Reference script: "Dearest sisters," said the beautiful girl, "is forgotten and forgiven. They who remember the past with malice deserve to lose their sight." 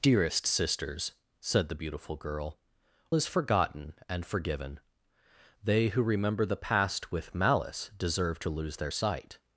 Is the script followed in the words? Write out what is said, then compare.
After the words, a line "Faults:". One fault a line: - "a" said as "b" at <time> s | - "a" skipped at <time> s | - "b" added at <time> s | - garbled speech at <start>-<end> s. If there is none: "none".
"Dearest sisters," said the beautiful girl, "is forgotten and forgiven. They who remember the past with malice deserve to lose their sight."
Faults:
none